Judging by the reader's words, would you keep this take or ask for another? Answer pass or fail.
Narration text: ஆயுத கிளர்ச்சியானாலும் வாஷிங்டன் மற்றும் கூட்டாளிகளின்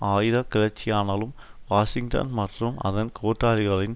fail